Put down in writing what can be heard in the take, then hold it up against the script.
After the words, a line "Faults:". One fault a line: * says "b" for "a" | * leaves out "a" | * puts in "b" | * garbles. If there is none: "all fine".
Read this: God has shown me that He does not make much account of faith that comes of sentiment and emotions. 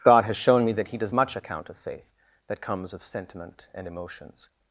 God has shown me that He does much account of faith that comes of sentiment and emotions.
Faults:
* leaves out "not make"